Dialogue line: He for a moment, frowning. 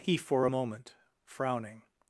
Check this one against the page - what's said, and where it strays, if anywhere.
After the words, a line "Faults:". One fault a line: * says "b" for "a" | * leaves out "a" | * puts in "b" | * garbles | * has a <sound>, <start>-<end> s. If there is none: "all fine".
He for a moment, frowning.
Faults:
all fine